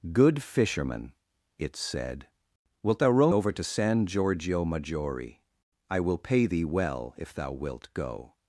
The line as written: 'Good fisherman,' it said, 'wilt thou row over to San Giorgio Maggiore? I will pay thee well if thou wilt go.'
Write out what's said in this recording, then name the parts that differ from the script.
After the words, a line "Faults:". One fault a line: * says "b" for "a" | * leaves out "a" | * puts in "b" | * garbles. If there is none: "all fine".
'Good fisherman,' it said, 'wilt thou row over to San Giorgio Maggiore? I will pay thee well if thou wilt go.'
Faults:
all fine